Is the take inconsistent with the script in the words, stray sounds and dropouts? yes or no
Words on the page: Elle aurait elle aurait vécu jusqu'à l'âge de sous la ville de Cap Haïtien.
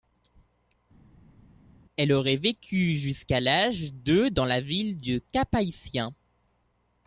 yes